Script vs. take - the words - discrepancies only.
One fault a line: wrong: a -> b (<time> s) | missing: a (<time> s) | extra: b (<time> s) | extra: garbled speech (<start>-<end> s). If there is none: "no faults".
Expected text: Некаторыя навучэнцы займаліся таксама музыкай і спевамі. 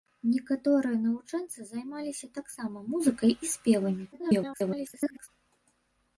extra: garbled speech (4.1-5.3 s)